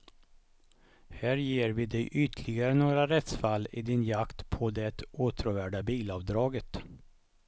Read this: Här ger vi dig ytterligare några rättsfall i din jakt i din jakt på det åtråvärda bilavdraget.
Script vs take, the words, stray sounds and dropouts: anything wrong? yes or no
yes